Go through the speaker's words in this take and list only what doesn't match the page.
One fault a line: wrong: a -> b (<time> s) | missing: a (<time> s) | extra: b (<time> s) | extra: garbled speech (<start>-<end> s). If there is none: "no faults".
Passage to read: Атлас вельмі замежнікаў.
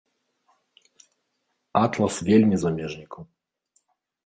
no faults